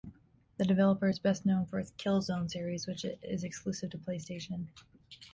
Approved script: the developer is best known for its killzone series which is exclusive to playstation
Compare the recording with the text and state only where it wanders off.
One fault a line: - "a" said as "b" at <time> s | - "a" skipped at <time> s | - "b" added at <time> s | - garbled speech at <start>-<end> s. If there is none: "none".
none